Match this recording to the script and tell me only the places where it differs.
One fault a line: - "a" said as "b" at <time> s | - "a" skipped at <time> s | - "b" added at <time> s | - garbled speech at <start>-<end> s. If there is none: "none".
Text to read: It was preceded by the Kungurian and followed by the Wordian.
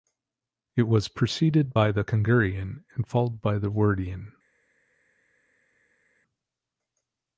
none